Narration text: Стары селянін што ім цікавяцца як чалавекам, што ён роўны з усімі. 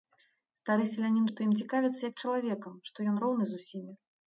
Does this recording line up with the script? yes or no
yes